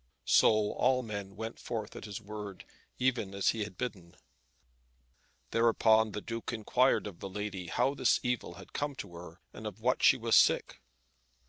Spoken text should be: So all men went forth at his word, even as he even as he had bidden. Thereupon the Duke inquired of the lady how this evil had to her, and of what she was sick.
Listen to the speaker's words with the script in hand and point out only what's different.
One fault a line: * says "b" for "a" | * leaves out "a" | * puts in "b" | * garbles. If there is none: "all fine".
* leaves out "even as he"
* puts in "come"